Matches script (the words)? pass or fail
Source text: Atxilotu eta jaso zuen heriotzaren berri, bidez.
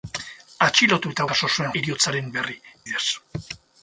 pass